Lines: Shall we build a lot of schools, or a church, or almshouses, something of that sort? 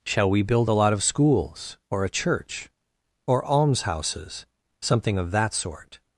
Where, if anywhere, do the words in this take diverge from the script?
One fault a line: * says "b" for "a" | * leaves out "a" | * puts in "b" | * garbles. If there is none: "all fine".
all fine